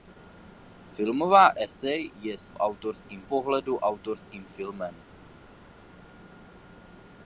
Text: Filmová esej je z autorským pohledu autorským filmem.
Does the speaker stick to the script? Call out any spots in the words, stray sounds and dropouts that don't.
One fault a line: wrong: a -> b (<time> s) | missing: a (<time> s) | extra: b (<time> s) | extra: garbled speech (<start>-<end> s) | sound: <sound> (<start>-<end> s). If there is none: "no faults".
no faults